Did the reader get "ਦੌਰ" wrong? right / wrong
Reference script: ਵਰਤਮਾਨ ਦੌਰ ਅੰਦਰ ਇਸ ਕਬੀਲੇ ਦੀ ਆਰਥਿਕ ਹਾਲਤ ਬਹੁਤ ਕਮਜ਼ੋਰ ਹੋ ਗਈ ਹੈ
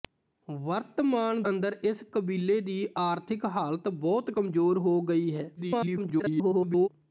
wrong